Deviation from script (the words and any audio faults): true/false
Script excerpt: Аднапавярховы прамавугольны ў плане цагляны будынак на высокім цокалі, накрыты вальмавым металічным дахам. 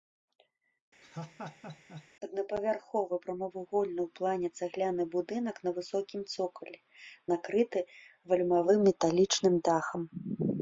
true